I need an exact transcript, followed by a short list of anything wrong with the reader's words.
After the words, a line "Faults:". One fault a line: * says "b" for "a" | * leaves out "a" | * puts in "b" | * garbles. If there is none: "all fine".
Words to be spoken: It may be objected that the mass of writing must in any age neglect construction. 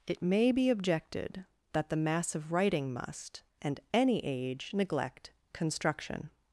It may be objected that the mass of writing must and any age neglect construction.
Faults:
* says "and" for "in"